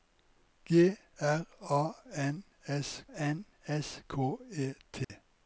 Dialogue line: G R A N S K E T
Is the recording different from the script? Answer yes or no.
yes